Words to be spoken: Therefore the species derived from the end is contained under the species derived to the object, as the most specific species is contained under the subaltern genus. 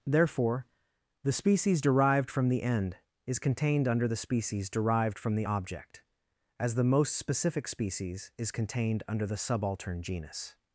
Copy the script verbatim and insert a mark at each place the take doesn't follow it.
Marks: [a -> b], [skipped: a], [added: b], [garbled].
Therefore the species derived from the end is contained under the species derived [to -> from] the object, as the most specific species is contained under the subaltern genus.